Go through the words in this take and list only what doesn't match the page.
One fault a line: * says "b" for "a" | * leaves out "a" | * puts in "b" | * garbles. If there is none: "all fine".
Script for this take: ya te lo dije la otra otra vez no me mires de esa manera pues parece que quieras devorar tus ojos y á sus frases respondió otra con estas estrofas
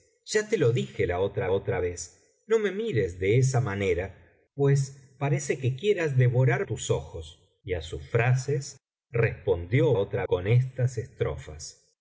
all fine